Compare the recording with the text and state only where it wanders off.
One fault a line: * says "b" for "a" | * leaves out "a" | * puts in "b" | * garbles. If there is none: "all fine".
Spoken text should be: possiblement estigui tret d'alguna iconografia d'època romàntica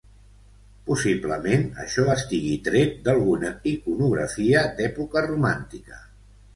* puts in "això"